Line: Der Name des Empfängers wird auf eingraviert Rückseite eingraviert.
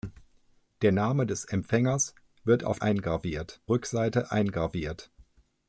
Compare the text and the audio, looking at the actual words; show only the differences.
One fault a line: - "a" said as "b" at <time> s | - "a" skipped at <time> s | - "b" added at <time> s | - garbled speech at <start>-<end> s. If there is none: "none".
none